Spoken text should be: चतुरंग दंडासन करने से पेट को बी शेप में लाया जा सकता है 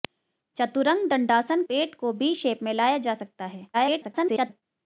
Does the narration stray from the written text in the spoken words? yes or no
yes